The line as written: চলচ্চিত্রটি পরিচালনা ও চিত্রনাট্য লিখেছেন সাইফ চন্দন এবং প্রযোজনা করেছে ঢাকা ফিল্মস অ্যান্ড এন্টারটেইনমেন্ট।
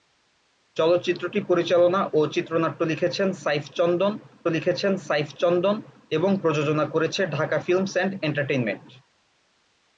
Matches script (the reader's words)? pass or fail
fail